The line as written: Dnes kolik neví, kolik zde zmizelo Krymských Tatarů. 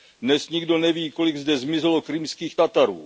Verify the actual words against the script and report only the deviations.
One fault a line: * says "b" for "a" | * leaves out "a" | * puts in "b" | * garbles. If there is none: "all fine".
* says "nikdo" for "kolik"